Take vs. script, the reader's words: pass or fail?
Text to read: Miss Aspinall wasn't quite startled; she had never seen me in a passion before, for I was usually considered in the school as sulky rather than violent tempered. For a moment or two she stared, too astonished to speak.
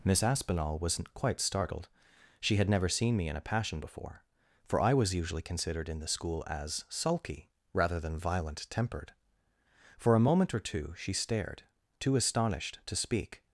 pass